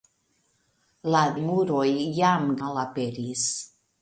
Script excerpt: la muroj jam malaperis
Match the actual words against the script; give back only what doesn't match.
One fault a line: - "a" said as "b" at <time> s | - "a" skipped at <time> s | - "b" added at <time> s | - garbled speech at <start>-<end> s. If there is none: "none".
none